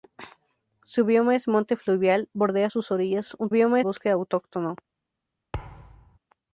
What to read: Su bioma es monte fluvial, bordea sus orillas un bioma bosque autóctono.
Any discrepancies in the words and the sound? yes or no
yes